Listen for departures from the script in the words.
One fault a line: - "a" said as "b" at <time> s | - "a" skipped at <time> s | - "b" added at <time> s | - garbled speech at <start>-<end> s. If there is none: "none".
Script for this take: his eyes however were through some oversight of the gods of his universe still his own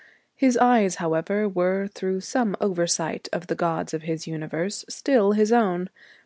none